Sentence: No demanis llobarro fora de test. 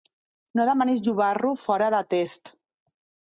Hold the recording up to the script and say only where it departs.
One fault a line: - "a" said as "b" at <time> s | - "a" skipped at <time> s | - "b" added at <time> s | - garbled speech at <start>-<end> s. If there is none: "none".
none